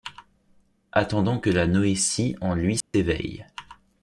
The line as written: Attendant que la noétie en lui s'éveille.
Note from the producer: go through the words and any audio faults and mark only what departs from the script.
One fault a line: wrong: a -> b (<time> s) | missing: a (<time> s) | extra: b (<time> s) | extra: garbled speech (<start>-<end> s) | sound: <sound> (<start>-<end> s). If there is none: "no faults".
sound: dropout (2.8-2.9 s)